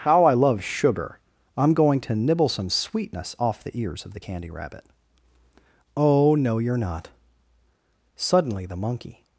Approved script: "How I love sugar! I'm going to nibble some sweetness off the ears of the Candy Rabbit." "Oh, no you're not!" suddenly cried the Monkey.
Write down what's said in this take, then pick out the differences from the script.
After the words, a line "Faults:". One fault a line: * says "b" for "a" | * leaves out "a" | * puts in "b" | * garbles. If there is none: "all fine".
"How I love sugar! I'm going to nibble some sweetness off the ears of the Candy Rabbit." "Oh, no you're not!" suddenly the Monkey.
Faults:
* leaves out "cried"